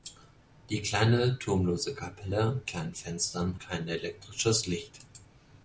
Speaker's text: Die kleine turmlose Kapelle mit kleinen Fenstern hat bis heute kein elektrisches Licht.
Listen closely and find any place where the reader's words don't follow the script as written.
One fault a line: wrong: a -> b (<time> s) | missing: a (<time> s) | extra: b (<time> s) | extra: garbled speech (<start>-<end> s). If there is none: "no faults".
missing: mit (2.6 s)
missing: hat bis heute (3.6 s)